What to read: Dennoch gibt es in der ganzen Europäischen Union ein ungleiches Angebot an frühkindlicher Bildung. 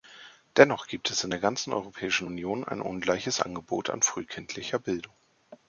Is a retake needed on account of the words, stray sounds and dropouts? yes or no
no